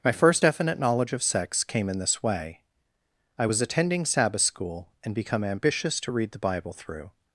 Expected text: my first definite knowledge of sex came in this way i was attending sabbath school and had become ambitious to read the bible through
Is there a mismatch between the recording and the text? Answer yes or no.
yes